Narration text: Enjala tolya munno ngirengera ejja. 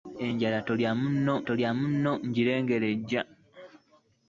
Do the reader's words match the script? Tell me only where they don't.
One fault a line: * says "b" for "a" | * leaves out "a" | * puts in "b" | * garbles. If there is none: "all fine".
* puts in "tolya munno"